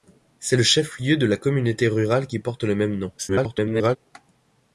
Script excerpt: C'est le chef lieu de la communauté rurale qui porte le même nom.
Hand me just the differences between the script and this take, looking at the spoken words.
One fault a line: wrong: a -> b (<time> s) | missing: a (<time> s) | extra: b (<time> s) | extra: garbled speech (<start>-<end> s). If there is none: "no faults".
extra: garbled speech (3.2-4.0 s)